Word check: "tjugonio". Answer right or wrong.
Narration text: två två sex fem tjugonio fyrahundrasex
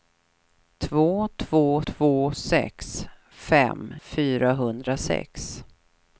wrong